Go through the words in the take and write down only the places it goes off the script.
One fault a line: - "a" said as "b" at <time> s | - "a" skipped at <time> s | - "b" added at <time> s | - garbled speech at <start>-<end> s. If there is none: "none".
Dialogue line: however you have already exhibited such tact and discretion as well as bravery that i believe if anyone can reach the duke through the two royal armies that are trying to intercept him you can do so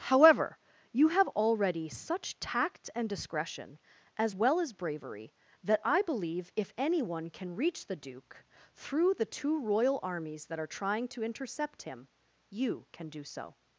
- "exhibited" skipped at 1.9 s